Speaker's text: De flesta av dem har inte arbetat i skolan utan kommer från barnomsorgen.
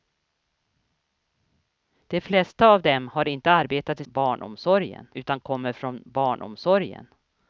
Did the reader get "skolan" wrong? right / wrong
wrong